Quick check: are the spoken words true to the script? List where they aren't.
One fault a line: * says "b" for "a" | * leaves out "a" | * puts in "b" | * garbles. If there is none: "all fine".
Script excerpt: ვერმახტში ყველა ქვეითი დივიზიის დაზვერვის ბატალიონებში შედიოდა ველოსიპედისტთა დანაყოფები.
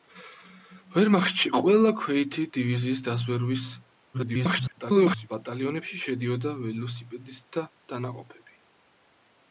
* garbles